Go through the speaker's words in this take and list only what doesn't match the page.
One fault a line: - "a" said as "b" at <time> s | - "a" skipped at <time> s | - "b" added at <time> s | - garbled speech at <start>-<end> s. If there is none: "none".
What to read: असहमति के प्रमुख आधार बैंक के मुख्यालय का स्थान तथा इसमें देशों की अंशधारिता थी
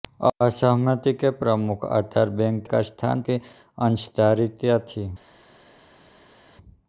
- "के मुख्यालय" skipped at 2.6 s
- "तथा इसमें देशों" skipped at 3.2 s